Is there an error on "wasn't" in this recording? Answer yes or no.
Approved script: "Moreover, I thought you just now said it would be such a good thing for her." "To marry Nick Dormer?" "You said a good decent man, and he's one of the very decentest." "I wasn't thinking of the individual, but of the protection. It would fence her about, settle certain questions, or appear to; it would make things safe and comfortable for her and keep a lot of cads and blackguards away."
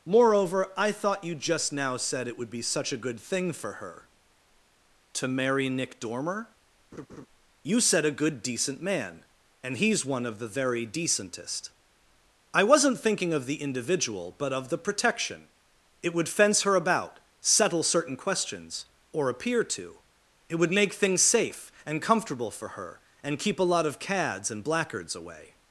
no